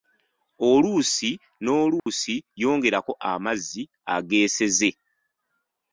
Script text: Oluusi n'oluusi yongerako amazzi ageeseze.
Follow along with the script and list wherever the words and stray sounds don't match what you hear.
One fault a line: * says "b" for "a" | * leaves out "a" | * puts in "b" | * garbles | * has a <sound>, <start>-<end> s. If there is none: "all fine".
* has a dropout, 2.0-2.1 s